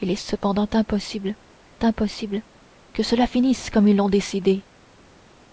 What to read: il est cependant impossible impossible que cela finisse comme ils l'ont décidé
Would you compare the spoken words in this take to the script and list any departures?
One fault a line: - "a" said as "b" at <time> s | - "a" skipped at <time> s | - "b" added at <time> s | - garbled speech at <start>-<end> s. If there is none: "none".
none